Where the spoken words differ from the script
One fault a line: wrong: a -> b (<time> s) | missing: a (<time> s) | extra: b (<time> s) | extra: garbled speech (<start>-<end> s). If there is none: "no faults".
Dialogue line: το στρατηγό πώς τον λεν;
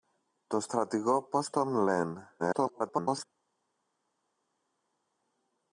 extra: garbled speech (2.4-3.3 s)